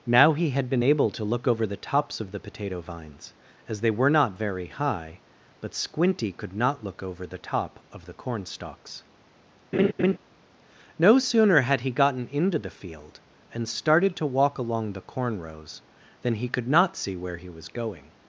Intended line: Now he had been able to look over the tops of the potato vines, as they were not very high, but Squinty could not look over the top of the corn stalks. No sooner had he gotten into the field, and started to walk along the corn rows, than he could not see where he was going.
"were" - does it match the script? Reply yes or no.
yes